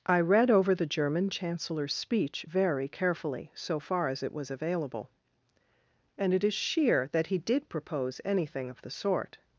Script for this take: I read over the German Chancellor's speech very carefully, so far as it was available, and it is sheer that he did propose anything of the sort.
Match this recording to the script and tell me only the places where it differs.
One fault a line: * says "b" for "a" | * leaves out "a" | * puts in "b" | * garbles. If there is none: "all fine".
all fine